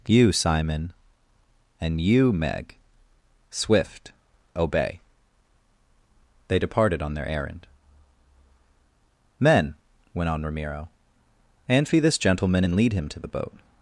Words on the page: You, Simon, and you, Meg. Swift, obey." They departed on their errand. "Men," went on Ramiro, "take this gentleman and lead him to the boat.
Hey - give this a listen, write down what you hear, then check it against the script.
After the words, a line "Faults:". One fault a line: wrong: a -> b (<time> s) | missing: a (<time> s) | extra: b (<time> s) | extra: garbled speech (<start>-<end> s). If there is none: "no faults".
You, Simon, and you, Meg. Swift, obey." They departed on their errand. "Men," went on Ramiro, "anfi this gentleman and lead him to the boat.
Faults:
wrong: take -> anfi (11.7 s)